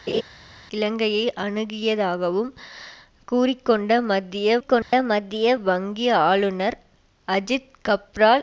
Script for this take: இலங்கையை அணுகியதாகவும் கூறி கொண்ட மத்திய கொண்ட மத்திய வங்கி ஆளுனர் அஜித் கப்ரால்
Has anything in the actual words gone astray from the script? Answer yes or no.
no